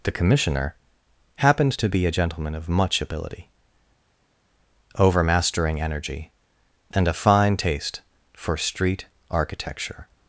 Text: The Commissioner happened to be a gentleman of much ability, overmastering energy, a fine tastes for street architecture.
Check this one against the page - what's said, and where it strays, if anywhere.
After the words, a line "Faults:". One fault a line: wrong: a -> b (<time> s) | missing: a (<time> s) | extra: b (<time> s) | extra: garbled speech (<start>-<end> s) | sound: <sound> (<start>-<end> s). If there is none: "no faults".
The Commissioner happened to be a gentleman of much ability, overmastering energy, and a fine taste for street architecture.
Faults:
extra: and (6.9 s)
wrong: tastes -> taste (7.6 s)